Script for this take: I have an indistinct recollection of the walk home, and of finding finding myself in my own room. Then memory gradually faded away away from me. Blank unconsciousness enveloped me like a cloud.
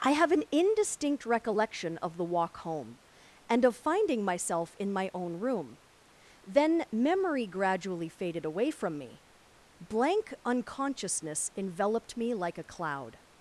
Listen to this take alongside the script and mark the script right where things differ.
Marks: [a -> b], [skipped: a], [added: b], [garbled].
I have an indistinct recollection of the walk home, and of finding [skipped: finding] myself in my own room. Then memory gradually faded away [skipped: away] from me. Blank unconsciousness enveloped me like a cloud.